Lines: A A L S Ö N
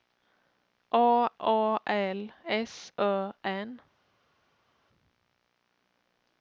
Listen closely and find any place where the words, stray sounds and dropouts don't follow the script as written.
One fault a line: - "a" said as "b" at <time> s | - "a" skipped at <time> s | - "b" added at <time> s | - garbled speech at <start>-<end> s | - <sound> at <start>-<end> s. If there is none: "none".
none